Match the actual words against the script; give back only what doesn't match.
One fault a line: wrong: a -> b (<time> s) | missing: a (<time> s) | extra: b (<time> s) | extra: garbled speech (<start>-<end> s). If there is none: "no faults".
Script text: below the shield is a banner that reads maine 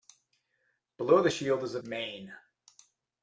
missing: banner that reads (1.8 s)